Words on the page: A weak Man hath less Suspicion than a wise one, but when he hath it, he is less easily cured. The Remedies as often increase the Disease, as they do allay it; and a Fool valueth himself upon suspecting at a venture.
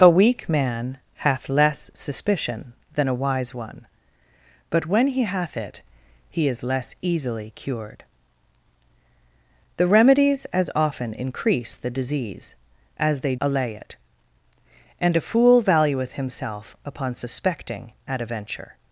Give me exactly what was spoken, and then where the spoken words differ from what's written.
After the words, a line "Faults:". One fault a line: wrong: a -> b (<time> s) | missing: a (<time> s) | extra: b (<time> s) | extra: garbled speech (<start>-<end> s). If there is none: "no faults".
A weak Man hath less Suspicion than a wise one, but when he hath it, he is less easily cured. The Remedies as often increase the Disease, as they allay it; and a Fool valueth himself upon suspecting at a venture.
Faults:
missing: do (13.3 s)